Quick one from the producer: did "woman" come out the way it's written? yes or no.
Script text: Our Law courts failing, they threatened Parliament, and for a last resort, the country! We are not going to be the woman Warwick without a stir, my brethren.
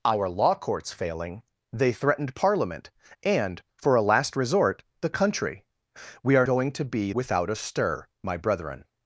no